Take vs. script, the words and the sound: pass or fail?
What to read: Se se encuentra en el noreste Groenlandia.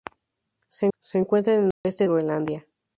fail